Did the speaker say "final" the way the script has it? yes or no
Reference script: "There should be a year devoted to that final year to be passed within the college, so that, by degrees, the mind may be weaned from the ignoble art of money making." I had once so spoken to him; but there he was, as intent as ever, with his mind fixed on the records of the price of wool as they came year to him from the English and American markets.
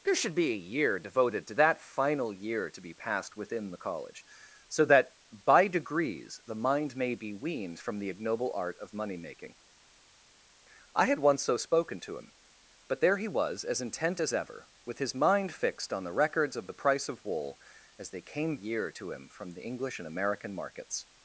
yes